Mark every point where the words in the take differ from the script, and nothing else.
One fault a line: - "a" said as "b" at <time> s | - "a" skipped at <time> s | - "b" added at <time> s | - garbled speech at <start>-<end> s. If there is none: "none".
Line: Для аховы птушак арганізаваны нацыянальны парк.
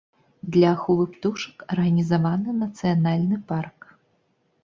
none